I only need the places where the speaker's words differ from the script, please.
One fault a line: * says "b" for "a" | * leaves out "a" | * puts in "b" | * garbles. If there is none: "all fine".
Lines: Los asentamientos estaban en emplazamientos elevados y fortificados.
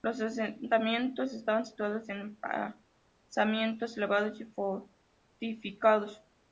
* puts in "situados"